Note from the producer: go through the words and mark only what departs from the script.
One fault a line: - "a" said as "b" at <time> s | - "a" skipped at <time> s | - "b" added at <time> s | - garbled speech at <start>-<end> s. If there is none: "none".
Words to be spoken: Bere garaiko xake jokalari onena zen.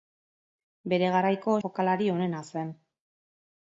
- "xake" skipped at 1.6 s